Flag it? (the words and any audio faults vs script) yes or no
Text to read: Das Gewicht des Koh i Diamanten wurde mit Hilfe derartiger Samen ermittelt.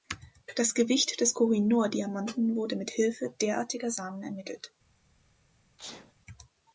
yes